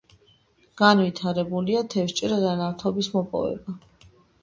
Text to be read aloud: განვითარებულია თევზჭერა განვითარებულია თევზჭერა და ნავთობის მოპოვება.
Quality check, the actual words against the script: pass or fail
fail